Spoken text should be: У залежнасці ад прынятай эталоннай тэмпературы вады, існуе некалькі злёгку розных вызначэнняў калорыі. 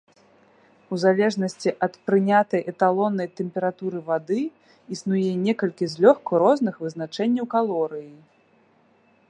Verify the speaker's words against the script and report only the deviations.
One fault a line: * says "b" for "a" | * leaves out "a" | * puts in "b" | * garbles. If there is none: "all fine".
all fine